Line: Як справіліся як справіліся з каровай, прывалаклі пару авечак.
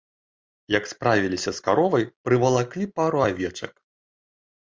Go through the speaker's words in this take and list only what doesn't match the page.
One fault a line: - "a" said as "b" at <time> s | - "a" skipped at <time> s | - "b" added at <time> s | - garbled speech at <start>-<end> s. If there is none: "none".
- "як справіліся" skipped at 1.5 s